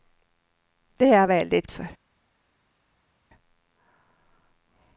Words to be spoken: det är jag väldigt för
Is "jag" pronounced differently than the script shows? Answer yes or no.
no